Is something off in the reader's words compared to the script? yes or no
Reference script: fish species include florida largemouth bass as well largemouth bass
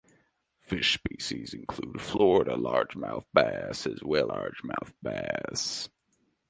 no